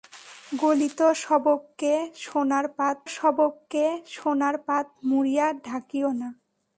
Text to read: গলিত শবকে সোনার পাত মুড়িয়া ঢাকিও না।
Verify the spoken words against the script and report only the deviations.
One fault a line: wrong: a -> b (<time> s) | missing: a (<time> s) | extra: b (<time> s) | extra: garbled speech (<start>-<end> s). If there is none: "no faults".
extra: শবকে সোনার পাত (3.1 s)